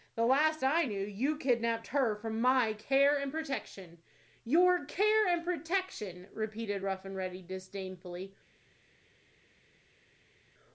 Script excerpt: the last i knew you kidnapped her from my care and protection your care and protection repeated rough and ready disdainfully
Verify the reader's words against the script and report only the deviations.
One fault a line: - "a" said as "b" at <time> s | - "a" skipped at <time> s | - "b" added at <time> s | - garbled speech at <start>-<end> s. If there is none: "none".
none